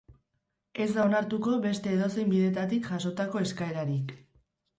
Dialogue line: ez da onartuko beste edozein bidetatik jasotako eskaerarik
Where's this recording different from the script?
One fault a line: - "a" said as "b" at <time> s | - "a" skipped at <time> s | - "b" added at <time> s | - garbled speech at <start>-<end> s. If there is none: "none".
none